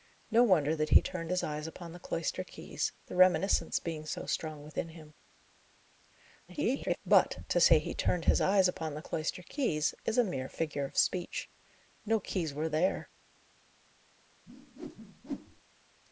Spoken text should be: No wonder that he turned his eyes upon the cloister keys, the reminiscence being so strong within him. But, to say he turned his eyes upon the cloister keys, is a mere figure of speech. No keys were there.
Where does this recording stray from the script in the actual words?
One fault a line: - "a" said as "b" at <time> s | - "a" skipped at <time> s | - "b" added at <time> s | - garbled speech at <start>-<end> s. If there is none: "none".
- garbled speech at 6.5-7.0 s